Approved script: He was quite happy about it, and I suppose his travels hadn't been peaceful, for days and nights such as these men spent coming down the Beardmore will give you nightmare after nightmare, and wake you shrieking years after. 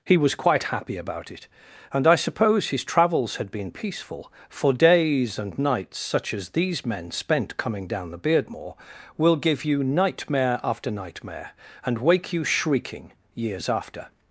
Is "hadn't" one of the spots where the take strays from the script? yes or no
yes